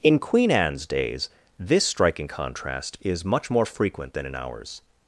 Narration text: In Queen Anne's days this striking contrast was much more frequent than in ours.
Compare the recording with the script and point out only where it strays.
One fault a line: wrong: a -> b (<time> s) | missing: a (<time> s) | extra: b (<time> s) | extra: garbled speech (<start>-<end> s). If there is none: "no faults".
wrong: was -> is (3.0 s)